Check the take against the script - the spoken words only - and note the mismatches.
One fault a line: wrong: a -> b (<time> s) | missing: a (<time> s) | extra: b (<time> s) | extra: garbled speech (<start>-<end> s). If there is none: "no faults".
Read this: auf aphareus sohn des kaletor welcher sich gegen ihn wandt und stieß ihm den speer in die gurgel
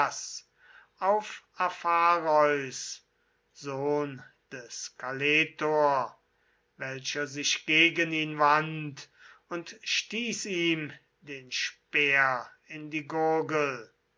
no faults